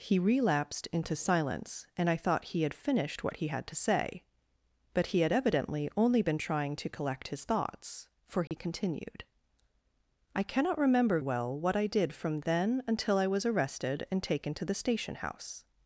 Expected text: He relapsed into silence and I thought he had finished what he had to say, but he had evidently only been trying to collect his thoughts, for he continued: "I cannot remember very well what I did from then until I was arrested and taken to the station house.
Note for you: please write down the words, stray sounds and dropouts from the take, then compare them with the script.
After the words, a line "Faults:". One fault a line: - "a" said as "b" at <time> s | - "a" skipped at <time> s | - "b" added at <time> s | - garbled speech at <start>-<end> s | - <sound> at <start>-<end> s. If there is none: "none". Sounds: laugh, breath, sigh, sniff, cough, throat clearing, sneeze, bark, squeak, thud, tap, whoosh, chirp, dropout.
He relapsed into silence and I thought he had finished what he had to say, but he had evidently only been trying to collect his thoughts, for he continued: "I cannot remember well what I did from then until I was arrested and taken to the station house.
Faults:
- dropout at 8.5-8.5 s
- "very" skipped at 11.2 s